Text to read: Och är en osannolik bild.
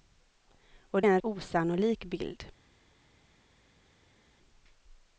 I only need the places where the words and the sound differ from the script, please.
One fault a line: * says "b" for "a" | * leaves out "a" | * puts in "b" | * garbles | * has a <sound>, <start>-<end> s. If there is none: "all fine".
all fine